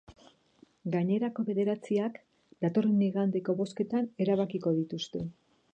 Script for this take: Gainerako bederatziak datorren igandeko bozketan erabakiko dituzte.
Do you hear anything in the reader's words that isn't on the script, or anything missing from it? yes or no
no